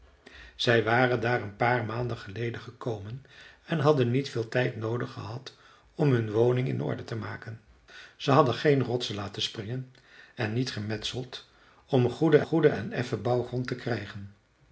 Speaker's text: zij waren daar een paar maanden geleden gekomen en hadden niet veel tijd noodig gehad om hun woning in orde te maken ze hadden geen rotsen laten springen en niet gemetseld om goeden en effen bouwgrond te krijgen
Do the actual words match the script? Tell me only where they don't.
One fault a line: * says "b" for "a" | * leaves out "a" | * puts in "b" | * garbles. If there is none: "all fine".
* puts in "goeden"